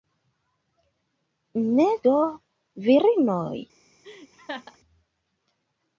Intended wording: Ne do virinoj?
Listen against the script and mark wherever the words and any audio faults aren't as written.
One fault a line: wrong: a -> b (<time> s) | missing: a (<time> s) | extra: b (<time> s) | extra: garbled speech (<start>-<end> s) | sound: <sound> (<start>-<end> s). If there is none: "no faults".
sound: laugh (4.0-4.8 s)